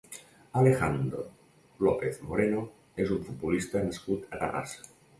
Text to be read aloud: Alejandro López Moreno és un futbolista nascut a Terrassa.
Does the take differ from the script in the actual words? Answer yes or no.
no